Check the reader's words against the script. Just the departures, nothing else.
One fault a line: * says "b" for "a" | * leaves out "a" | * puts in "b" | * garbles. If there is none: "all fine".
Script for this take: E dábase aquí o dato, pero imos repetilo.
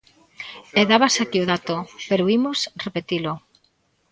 all fine